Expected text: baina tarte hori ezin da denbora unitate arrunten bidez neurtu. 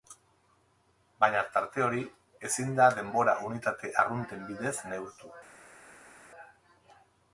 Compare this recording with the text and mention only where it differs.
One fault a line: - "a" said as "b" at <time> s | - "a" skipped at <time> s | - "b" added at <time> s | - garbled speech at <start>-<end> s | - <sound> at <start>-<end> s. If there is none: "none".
none